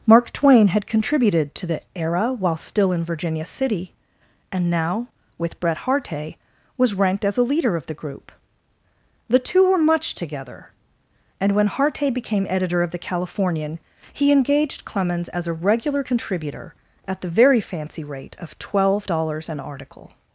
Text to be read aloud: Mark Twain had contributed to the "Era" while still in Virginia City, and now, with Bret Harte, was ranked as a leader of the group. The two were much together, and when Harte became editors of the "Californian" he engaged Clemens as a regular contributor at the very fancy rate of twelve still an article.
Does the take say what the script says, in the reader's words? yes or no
no